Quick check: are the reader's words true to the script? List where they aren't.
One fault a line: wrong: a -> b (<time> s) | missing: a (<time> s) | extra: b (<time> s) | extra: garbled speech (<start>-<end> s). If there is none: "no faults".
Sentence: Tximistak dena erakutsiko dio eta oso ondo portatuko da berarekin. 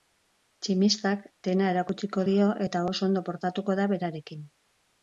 no faults